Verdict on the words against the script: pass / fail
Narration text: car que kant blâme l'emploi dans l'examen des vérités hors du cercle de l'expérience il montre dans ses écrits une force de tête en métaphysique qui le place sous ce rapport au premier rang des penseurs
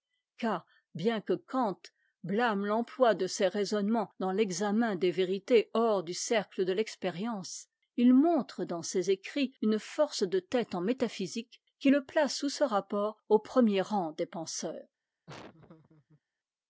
fail